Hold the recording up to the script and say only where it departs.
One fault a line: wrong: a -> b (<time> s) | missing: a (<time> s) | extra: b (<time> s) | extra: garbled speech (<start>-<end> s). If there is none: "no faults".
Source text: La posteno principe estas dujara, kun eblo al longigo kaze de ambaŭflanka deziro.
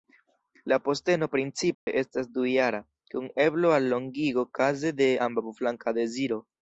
no faults